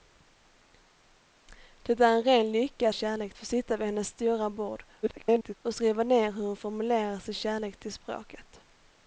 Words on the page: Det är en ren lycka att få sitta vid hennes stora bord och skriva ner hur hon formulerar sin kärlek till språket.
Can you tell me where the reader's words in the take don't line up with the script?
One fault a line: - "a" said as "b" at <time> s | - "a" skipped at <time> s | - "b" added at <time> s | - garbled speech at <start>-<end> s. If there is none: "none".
- "att" said as "kärlek" at 2.9 s
- garbled speech at 5.0-5.5 s